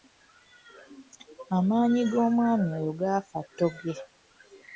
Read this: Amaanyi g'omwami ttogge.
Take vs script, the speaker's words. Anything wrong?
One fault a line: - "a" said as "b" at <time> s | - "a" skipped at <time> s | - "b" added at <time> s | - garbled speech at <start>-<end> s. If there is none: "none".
- "oyo gaafa" added at 2.8 s